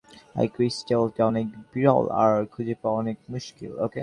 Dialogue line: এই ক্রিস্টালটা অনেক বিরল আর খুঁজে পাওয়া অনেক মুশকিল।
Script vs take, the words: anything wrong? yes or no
no